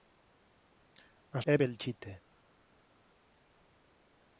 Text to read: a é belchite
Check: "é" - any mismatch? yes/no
no